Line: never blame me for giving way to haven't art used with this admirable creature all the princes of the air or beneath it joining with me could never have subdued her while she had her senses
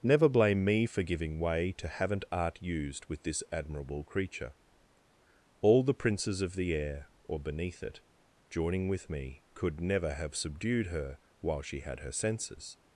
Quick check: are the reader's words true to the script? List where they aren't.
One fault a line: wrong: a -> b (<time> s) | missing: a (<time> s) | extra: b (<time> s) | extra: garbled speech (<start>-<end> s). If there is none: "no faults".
no faults